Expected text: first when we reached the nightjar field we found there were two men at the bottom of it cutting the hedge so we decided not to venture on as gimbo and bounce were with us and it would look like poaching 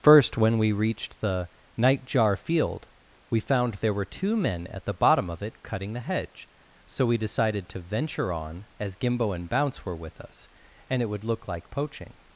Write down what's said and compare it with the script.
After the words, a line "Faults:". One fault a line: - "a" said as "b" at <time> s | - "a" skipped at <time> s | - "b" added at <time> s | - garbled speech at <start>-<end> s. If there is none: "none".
first when we reached the nightjar field we found there were two men at the bottom of it cutting the hedge so we decided to venture on as gimbo and bounce were with us and it would look like poaching
Faults:
- "not" skipped at 7.7 s